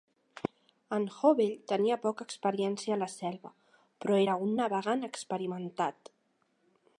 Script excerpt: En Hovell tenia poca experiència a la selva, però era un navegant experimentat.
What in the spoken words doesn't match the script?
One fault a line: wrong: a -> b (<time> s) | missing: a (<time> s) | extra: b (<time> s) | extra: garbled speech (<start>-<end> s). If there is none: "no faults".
no faults